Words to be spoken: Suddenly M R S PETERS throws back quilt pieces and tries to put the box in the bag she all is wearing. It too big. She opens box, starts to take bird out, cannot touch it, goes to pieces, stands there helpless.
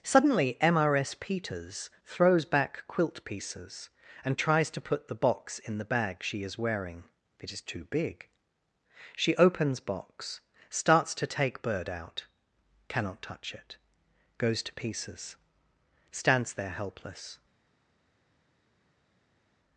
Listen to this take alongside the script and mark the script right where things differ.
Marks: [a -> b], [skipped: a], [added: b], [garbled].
Suddenly M R S PETERS throws back quilt pieces and tries to put the box in the bag she [skipped: all] is wearing. It [added: is] too big. She opens box, starts to take bird out, cannot touch it, goes to pieces, stands there helpless.